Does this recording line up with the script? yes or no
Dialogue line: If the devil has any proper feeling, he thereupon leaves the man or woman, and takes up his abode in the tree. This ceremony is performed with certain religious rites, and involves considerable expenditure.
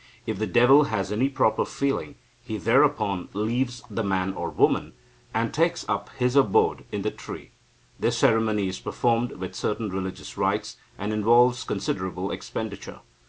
yes